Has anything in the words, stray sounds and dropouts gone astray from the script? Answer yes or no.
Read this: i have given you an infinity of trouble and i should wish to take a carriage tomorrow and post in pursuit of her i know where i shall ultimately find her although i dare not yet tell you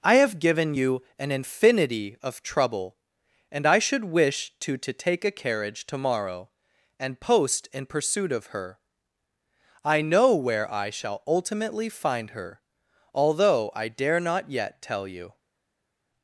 yes